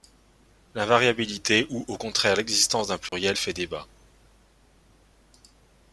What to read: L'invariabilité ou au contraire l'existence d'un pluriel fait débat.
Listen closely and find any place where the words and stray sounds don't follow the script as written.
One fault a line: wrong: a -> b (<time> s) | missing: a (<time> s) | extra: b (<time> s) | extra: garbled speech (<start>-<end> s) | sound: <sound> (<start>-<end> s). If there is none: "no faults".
sound: dropout (3.1-3.1 s)